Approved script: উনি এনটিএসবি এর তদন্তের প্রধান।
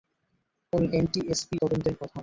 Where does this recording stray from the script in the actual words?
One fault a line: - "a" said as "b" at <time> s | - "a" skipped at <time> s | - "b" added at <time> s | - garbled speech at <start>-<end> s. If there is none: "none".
- "এর" skipped at 1.6 s